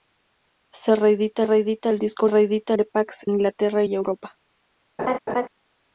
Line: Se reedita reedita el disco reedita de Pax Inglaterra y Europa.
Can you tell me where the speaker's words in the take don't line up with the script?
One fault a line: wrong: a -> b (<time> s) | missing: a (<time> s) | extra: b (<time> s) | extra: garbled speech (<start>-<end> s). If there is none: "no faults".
no faults